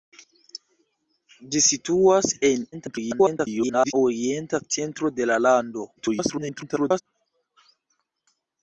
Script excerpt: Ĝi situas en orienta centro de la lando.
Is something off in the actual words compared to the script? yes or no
yes